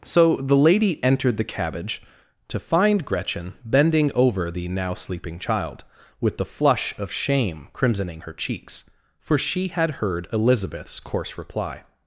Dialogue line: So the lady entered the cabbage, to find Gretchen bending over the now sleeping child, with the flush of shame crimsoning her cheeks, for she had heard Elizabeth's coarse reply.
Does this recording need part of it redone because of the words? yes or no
no